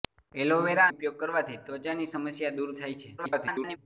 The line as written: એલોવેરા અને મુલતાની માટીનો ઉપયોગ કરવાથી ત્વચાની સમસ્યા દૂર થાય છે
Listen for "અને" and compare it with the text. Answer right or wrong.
wrong